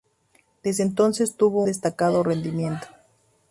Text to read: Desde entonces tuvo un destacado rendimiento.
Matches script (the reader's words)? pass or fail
fail